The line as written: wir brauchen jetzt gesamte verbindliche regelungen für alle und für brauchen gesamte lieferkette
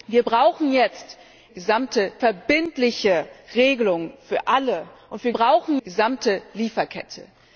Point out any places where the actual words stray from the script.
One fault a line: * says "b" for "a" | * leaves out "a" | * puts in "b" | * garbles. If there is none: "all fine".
all fine